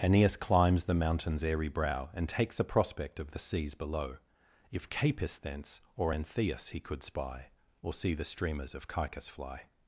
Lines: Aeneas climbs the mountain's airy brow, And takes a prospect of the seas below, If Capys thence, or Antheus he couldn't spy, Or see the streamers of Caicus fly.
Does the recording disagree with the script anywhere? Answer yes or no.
yes